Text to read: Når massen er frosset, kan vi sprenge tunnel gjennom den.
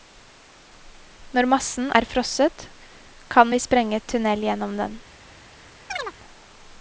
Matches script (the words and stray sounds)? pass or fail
fail